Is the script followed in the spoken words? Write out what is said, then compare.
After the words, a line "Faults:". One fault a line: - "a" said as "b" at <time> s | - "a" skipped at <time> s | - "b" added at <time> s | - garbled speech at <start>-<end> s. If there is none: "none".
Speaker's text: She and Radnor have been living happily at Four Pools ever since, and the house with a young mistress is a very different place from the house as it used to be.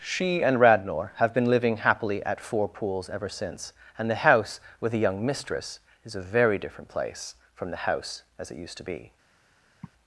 She and Radnor have been living happily at Four Pools ever since, and the house with a young mistress is a very different place from the house as it used to be.
Faults:
none